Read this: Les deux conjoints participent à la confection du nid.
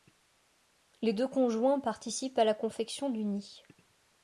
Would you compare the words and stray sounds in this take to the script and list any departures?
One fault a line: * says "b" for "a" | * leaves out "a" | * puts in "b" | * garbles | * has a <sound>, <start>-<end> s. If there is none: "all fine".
all fine